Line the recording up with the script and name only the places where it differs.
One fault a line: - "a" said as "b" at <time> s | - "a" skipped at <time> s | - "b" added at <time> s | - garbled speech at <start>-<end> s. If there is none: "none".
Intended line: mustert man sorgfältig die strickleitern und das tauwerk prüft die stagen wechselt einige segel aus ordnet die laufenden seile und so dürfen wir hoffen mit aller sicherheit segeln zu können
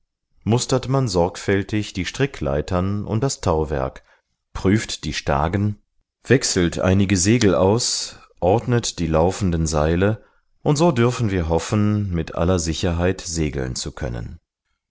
none